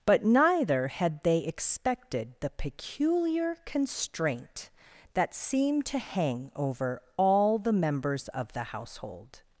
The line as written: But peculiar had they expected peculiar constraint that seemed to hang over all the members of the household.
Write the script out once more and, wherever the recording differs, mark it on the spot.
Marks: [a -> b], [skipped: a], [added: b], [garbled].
But [peculiar -> neither] had they expected [added: the] peculiar constraint that seemed to hang over all the members of the household.